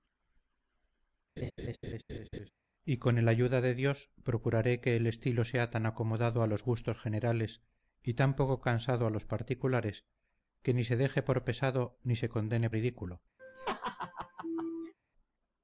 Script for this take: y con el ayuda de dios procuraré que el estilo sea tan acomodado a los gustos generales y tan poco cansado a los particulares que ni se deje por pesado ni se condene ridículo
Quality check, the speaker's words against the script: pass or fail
pass